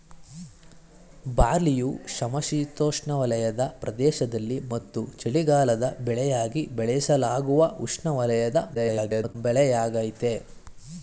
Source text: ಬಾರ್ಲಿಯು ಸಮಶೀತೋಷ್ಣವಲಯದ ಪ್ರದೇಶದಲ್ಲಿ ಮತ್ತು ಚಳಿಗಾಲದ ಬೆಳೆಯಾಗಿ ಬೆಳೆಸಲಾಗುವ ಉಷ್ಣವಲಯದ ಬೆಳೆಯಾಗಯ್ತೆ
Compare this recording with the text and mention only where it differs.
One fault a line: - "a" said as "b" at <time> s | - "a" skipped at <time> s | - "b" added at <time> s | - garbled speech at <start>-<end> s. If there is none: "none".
- garbled speech at 8.7-9.4 s